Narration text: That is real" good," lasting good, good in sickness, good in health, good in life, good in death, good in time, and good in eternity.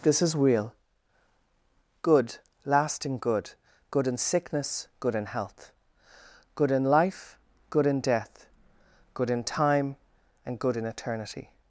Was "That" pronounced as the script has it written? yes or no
no